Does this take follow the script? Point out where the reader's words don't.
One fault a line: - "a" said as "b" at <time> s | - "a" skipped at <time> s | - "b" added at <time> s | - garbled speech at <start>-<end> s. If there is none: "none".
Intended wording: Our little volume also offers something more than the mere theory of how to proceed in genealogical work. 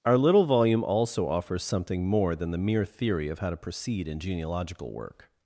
none